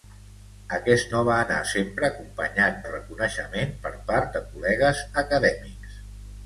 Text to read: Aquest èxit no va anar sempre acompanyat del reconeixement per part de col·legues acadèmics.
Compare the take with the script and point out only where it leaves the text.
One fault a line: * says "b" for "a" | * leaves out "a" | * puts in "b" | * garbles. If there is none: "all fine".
* leaves out "èxit"
* leaves out "del"